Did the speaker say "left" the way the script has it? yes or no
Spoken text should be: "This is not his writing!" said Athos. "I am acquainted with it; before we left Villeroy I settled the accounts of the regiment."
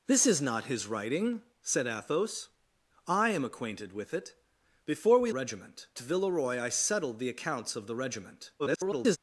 no